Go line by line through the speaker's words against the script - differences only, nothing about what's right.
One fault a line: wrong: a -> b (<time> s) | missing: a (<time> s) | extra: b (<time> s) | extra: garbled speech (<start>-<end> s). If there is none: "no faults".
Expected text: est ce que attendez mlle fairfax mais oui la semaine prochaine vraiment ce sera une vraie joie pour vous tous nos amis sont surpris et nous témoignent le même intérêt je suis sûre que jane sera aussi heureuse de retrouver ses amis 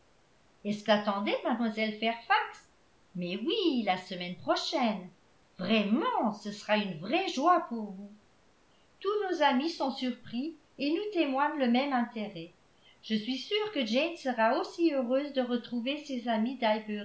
no faults